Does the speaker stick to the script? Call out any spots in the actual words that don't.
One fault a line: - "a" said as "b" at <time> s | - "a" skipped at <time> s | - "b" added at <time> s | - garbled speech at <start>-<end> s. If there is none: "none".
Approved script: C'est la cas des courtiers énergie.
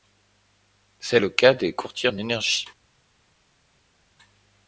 - "la" said as "le" at 1.2 s
- "en" added at 2.0 s